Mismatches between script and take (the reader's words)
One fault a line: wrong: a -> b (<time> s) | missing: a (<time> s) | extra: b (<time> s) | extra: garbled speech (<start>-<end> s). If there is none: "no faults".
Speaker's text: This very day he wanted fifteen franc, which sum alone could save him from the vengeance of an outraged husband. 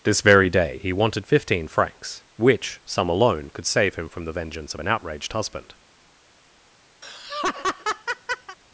wrong: franc -> francs (1.7 s)